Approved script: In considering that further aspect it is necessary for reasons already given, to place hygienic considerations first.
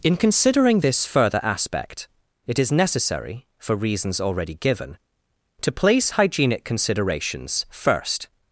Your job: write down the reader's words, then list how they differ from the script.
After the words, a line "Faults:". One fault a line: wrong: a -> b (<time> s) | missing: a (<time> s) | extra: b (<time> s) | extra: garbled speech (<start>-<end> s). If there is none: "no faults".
In considering this further aspect it is necessary for reasons already given, to place hygienic considerations first.
Faults:
wrong: that -> this (0.8 s)